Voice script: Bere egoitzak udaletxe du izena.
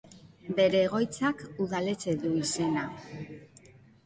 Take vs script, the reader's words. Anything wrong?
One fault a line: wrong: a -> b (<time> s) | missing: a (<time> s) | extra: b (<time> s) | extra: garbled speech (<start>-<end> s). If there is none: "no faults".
no faults